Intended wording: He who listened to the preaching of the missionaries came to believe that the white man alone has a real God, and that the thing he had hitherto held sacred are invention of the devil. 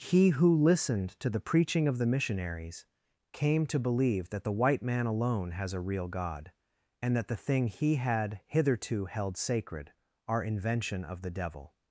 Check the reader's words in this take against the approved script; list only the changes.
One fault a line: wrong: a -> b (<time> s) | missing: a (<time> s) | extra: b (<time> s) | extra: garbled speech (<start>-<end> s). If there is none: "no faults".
no faults